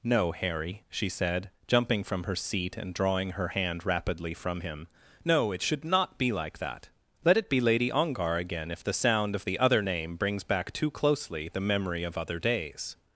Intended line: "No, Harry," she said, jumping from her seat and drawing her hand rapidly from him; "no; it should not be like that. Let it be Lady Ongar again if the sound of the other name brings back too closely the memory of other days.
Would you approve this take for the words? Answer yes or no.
yes